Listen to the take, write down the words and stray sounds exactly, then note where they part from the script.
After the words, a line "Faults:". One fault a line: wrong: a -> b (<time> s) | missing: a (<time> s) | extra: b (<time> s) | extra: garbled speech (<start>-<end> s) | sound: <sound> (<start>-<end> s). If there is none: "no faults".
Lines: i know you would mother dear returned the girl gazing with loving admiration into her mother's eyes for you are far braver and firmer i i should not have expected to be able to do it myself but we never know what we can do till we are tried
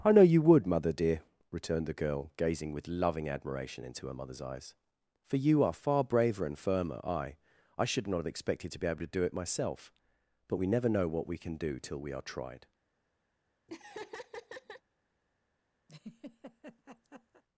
i know you would mother dear returned the girl gazing with loving admiration into her mother's eyes for you are far braver and firmer i i should not have expected to be able to do it myself but we never know what we can do till we are tried
Faults:
sound: laugh (13.7-14.8 s)
sound: laugh (15.9-17.4 s)